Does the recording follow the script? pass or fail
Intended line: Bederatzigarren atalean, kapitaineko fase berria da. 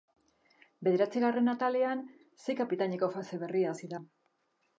fail